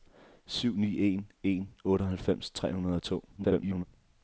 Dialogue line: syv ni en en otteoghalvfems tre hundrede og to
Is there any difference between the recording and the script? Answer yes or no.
yes